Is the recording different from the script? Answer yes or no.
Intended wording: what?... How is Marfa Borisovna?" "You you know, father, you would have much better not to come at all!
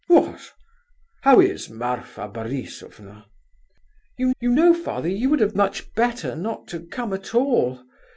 no